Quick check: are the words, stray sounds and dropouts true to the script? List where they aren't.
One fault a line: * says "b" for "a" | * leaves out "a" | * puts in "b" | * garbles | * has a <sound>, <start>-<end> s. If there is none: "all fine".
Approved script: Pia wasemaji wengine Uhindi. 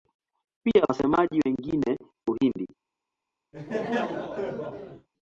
* has a laugh, 3.5-5.1 s